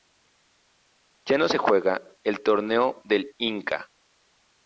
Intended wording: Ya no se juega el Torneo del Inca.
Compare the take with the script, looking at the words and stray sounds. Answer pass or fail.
pass